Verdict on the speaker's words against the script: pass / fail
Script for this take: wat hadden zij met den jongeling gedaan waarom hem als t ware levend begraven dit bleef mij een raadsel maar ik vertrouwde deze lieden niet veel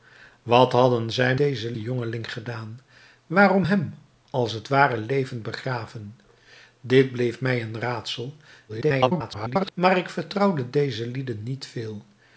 fail